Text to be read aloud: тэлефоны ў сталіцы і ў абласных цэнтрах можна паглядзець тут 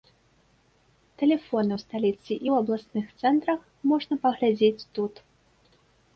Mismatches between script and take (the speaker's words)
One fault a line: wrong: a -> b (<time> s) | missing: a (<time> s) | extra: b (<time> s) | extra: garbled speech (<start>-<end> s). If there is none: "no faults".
no faults